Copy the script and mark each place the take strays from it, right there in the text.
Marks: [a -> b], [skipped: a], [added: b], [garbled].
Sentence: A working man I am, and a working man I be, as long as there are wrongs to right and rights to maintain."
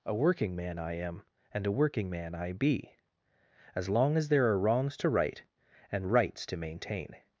A working man I am, and a working man I be, as long as there are wrongs to right and rights to maintain."